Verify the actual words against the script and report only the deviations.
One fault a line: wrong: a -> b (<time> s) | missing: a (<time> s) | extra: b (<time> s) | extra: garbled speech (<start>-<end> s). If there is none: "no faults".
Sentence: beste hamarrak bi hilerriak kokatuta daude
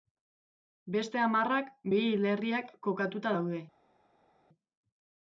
no faults